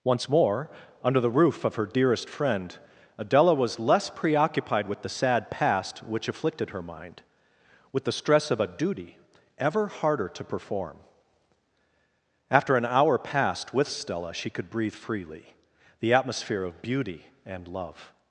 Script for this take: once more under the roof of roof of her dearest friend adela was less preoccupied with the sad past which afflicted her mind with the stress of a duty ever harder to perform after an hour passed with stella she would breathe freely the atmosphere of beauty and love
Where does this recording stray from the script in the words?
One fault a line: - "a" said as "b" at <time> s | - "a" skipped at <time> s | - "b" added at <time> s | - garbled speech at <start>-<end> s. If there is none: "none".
- "roof of" skipped at 1.8 s
- "would" said as "could" at 14.5 s